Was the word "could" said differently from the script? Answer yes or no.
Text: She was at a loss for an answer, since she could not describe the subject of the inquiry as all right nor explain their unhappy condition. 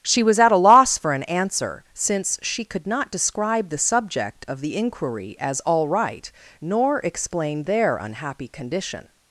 no